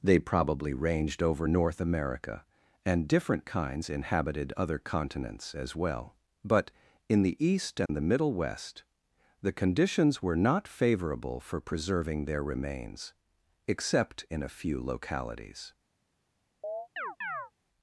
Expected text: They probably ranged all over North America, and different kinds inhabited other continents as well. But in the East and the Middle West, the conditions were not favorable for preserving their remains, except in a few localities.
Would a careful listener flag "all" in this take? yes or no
yes